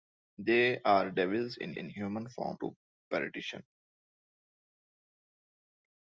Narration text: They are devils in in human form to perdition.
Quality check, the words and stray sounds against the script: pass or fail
pass